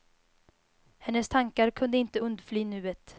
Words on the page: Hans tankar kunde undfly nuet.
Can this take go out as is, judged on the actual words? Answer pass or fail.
fail